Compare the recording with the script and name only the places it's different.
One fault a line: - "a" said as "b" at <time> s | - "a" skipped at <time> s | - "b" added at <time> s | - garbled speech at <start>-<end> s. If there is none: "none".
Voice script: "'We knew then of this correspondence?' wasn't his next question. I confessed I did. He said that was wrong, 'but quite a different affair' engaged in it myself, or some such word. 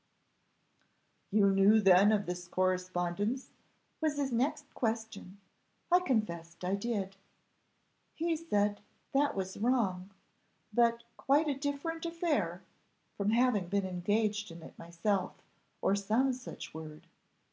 - "We" said as "You" at 1.3 s
- "wasn't" said as "was" at 4.0 s
- "from having been" added at 13.2 s